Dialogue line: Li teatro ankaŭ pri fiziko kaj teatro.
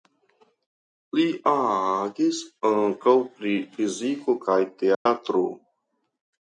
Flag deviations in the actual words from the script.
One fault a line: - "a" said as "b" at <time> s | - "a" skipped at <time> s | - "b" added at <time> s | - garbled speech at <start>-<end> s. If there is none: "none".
- "teatro" said as "agis" at 1.5 s